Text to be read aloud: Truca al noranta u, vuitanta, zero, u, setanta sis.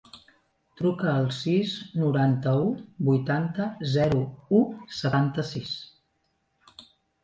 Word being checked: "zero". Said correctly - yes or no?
yes